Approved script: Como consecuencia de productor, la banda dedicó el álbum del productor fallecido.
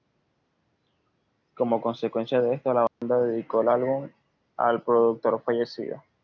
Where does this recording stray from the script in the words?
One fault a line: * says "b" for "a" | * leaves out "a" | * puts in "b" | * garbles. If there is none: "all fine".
* says "esto" for "productor"
* says "al" for "del"